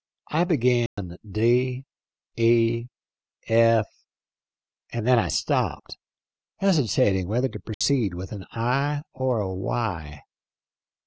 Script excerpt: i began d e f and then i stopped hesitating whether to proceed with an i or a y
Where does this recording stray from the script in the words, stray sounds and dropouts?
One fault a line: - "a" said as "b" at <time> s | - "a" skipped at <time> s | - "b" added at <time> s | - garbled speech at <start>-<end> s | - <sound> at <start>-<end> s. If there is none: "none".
- dropout at 0.9-1.0 s
- dropout at 7.7-7.8 s